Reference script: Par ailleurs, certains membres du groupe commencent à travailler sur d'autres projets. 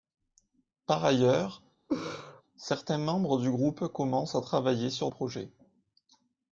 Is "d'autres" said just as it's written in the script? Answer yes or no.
no